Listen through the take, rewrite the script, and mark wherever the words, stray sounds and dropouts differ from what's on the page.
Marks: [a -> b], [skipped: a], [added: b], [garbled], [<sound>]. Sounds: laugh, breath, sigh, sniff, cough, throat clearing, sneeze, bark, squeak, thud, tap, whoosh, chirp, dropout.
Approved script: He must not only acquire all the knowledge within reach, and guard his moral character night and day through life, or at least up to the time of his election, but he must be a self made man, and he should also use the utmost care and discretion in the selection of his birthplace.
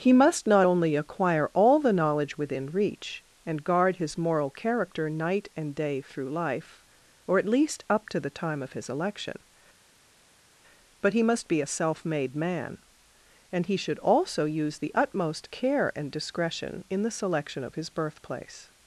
He must not only acquire all the knowledge within reach, and guard his moral character night and day through life, or at least up to the time of his election, but he must be a self made man, and he should also use the utmost care and discretion in the selection of his birthplace.